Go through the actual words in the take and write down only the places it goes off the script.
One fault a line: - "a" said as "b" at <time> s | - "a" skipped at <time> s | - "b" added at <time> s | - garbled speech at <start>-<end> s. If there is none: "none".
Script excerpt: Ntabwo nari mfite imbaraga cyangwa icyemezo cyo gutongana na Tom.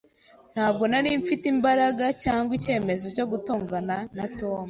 none